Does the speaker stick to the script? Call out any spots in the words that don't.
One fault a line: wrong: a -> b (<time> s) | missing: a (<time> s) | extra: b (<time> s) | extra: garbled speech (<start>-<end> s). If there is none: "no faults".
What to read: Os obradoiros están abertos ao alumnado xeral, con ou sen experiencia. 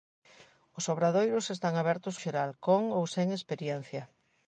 missing: ao alumnado (2.1 s)